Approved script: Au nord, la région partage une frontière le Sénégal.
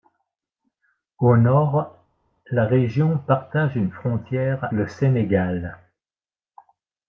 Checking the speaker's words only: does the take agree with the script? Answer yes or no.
yes